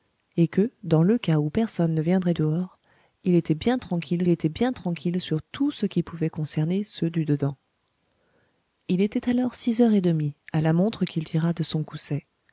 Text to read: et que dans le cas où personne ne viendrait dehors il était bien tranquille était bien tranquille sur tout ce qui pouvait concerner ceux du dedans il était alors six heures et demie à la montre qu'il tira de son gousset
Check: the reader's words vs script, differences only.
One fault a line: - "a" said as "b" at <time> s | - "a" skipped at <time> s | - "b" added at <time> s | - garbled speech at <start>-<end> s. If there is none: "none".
none